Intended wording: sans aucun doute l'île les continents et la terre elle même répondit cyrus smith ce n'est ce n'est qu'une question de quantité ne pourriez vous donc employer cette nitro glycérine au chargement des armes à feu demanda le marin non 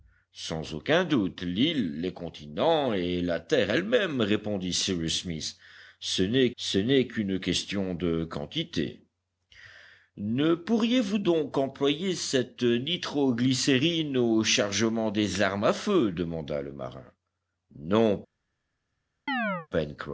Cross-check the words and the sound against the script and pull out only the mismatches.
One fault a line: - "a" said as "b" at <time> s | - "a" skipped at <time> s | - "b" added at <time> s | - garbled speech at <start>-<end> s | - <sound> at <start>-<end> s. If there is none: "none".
- chirp at 19.3-19.7 s